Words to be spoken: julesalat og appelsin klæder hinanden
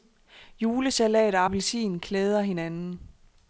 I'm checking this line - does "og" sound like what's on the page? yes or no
yes